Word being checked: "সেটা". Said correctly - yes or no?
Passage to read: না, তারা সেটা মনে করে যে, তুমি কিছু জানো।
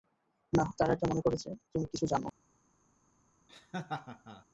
no